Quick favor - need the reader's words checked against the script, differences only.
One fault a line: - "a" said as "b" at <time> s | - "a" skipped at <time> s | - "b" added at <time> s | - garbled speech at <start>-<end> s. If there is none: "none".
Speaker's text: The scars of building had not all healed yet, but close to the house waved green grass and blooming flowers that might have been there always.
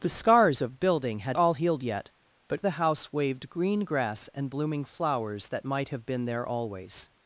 - "not" skipped at 1.4 s
- "close to" skipped at 2.6 s